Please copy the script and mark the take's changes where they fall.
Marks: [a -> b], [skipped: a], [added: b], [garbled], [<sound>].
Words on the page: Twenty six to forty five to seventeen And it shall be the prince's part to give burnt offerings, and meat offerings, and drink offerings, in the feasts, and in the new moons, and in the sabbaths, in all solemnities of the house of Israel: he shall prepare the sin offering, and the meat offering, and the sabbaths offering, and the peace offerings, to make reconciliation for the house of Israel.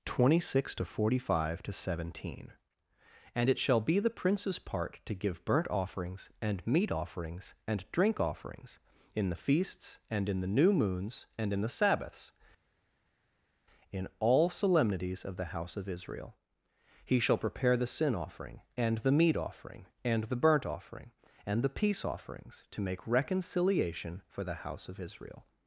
Twenty six to forty five to seventeen And it shall be the prince's part to give burnt offerings, and meat offerings, and drink offerings, in the feasts, and in the new moons, and in the sabbaths, in all solemnities of the house of Israel: he shall prepare the sin offering, and the meat offering, and the [sabbaths -> burnt] offering, and the peace offerings, to make reconciliation for the house of Israel.